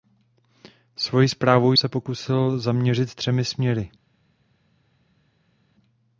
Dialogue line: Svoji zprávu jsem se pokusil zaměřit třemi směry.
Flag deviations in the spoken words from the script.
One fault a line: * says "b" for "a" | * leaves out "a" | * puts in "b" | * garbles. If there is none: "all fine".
* leaves out "jsem"